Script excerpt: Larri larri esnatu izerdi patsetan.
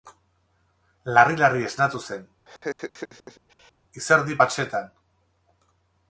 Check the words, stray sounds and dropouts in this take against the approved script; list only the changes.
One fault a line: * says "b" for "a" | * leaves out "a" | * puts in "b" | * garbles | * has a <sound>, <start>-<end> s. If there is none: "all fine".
* puts in "zen"
* has a laugh, 2.5-3.7 s